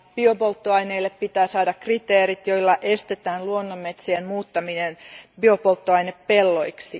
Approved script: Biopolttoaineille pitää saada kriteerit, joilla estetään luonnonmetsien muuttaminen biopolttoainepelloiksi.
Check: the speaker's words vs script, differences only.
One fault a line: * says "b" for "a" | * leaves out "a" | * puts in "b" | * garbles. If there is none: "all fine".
all fine